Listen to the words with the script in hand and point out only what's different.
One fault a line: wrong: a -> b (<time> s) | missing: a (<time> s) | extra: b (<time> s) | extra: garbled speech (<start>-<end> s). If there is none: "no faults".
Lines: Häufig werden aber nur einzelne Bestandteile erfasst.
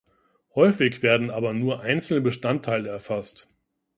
no faults